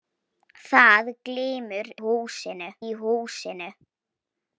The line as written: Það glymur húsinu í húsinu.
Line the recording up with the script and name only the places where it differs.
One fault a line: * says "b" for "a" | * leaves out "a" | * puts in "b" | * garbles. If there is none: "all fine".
all fine